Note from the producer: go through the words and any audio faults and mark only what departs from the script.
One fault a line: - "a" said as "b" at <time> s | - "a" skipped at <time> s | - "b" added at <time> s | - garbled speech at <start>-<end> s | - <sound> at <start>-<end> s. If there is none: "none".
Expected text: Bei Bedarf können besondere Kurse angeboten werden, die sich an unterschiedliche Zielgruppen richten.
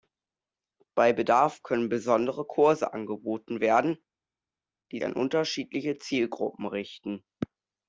- "sich" skipped at 5.0 s